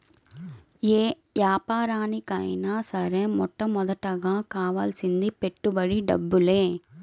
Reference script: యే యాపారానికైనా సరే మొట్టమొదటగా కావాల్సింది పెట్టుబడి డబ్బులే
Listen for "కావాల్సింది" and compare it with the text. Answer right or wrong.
right